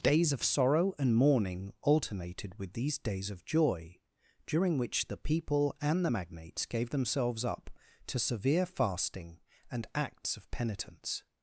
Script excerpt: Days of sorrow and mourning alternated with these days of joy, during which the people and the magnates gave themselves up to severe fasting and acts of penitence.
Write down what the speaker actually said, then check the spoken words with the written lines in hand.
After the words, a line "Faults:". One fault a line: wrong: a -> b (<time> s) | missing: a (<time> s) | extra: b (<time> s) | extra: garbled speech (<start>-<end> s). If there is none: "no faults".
Days of sorrow and mourning alternated with these days of joy, during which the people and the magnates gave themselves up to severe fasting and acts of penitence.
Faults:
no faults